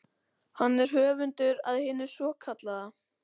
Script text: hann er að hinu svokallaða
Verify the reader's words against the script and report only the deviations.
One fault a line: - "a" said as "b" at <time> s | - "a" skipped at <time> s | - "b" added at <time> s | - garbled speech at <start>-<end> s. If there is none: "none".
- "höfundur" added at 0.9 s